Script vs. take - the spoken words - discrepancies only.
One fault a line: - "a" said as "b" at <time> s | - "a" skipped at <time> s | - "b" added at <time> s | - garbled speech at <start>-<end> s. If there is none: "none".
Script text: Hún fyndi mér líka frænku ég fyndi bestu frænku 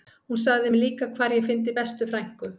- "fyndi" said as "sagði" at 0.4 s
- "frænku" said as "hvar" at 1.2 s